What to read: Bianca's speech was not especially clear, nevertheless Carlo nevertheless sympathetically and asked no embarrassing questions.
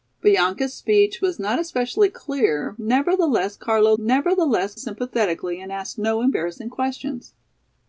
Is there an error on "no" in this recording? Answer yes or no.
no